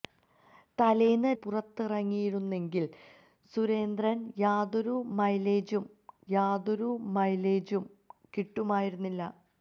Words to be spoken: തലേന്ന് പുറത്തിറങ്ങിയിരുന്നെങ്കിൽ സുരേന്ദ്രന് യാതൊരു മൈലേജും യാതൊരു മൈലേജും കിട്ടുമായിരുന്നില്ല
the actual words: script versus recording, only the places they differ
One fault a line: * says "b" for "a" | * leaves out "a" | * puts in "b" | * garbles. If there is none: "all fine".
all fine